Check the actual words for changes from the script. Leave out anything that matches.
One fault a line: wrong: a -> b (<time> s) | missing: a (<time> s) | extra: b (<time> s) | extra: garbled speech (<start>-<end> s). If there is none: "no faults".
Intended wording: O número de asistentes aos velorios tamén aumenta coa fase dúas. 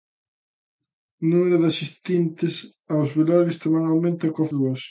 missing: fase (4.5 s)